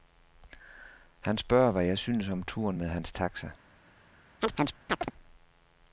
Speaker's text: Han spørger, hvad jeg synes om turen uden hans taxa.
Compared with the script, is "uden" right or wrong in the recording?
wrong